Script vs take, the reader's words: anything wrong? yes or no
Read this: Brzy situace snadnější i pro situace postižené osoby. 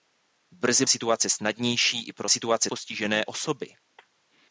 no